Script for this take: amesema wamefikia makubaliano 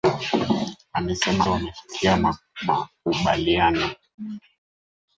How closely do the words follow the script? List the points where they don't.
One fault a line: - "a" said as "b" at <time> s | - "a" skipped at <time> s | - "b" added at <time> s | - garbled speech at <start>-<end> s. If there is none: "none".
none